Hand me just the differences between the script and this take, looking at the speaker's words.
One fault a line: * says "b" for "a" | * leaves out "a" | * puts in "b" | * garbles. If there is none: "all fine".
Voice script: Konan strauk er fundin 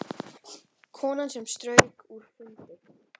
* puts in "sem"